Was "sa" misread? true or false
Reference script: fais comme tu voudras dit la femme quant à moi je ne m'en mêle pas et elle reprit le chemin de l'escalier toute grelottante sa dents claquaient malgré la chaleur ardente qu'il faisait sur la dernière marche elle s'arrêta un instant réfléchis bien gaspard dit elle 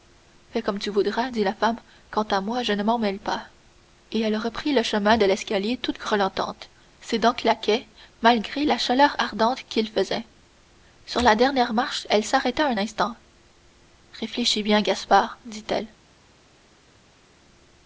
true